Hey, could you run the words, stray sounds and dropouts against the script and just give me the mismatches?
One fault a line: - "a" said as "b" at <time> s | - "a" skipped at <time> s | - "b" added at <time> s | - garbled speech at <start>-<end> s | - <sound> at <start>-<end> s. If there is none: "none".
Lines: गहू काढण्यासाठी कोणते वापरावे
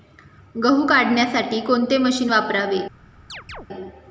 - "मशीन" added at 2.0 s
- chirp at 3.3-3.7 s